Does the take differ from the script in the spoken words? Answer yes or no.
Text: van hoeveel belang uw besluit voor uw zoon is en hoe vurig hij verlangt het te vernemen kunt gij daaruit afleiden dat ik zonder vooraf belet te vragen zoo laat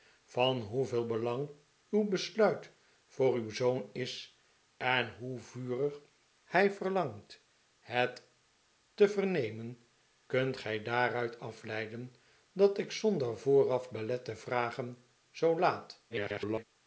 yes